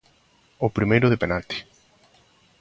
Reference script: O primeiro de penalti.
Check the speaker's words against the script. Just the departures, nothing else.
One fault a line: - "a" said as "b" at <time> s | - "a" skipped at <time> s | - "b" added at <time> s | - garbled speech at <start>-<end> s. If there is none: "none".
none